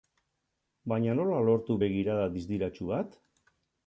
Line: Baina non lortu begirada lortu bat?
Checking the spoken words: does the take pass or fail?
fail